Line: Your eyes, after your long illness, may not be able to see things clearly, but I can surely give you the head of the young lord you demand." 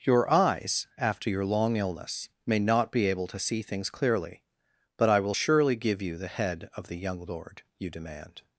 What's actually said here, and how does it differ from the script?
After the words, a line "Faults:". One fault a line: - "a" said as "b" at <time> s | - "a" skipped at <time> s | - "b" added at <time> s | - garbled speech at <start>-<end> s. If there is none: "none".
Your eyes, after your long illness, may not be able to see things clearly, but I will surely give you the head of the young lord you demand."
Faults:
- "can" said as "will" at 5.2 s